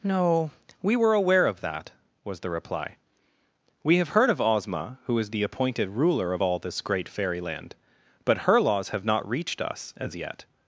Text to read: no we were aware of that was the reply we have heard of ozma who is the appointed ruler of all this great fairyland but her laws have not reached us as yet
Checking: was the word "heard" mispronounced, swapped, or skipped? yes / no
no